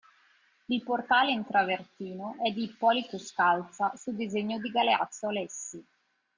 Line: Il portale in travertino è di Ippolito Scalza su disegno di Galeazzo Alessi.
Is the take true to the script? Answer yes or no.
yes